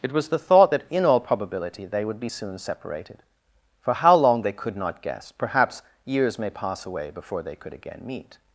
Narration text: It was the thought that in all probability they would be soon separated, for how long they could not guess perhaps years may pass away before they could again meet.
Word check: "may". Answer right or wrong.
right